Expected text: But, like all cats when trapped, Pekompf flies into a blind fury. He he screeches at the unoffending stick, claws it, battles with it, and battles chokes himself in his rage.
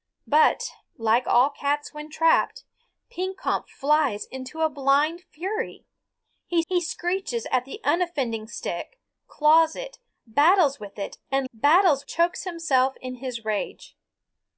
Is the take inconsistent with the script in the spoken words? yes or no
no